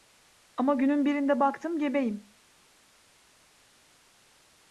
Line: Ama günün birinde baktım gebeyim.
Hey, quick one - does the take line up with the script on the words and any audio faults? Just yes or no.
yes